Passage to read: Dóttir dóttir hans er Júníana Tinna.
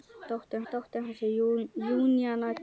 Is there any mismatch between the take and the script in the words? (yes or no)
no